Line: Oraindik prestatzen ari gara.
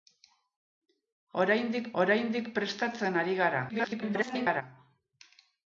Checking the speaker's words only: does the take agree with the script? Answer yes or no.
no